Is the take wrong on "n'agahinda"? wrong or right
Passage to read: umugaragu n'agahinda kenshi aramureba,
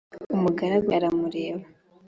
wrong